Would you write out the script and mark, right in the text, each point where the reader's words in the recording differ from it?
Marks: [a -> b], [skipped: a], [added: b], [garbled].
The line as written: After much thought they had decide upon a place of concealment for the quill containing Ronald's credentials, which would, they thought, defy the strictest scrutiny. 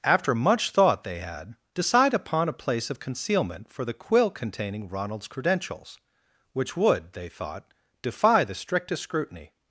After much thought they had decide upon a place of concealment for the quill containing Ronald's credentials, which would, they thought, defy the strictest scrutiny.